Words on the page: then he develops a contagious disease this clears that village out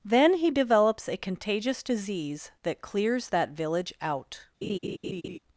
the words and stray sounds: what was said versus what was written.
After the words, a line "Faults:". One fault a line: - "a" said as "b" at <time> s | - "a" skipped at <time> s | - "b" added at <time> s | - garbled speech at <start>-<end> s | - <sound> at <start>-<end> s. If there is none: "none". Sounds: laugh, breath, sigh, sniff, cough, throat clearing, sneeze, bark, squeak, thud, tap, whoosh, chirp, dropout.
then he develops a contagious disease that clears that village out
Faults:
- "this" said as "that" at 2.6 s
- laugh at 4.6-5.4 s